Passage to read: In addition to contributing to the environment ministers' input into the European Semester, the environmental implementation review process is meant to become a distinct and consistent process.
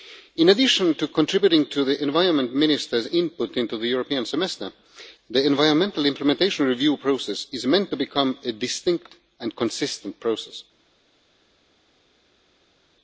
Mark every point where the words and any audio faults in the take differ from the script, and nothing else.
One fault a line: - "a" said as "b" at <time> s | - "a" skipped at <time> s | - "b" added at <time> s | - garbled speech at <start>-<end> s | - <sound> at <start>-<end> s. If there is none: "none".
none